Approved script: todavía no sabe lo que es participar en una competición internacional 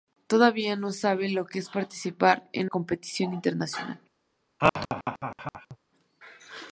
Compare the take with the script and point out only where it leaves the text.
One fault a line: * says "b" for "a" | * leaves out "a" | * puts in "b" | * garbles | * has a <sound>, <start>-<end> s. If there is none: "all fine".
* leaves out "una"
* has a laugh, 4.6-5.8 s